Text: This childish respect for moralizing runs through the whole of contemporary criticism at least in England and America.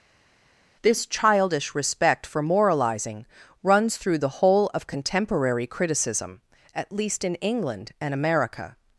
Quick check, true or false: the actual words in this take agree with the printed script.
true